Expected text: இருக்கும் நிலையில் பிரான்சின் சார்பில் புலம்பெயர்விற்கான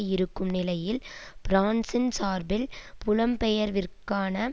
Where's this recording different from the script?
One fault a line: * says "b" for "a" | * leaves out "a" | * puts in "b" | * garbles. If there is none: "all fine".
all fine